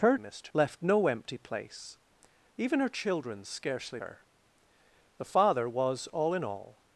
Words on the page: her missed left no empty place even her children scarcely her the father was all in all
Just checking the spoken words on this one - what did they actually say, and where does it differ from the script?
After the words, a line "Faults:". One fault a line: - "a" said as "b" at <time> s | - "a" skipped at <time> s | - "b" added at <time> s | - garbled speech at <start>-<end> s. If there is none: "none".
her missed left no empty place even her children scarcely her the father was all in all
Faults:
none